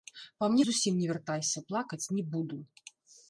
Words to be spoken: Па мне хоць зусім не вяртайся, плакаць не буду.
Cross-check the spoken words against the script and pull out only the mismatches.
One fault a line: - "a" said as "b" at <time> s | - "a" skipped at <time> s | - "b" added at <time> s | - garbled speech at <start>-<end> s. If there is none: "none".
- "хоць" skipped at 0.6 s